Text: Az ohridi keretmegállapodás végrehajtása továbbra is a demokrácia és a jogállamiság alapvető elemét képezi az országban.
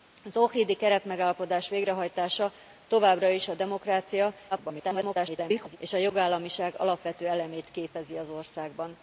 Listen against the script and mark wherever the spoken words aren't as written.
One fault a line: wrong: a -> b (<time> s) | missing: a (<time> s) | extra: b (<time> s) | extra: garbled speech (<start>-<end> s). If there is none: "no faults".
extra: garbled speech (4.5-5.8 s)